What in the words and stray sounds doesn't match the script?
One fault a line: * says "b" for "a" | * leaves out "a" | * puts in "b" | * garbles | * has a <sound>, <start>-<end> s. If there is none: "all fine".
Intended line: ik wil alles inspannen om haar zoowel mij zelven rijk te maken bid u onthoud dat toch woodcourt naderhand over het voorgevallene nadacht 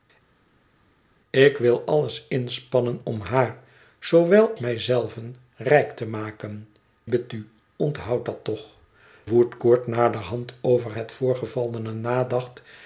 all fine